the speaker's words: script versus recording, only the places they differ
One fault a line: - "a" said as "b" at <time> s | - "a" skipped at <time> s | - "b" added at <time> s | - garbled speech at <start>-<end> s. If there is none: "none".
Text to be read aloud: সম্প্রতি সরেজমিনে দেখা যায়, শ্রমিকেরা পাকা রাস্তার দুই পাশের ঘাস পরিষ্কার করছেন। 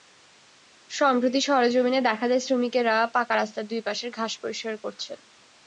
none